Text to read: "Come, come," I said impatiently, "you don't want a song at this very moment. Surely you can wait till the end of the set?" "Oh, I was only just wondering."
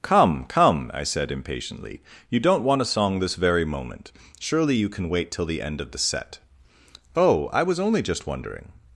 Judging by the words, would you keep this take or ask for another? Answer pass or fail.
fail